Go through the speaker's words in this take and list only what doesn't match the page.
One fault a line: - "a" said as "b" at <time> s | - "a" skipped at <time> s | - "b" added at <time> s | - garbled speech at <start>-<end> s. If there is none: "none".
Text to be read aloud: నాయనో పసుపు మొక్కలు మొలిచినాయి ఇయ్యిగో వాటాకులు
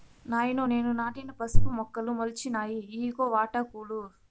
- "నేను నాటిన" added at 0.6 s